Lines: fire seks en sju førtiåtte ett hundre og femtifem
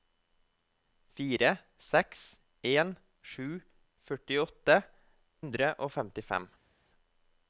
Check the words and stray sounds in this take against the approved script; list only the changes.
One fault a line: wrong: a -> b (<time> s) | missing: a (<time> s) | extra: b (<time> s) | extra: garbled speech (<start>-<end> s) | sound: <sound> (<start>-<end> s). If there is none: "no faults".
missing: ett (4.8 s)